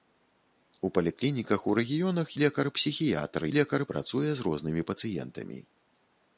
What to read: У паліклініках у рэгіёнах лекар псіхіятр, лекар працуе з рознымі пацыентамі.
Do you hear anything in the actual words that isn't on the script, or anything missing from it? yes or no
no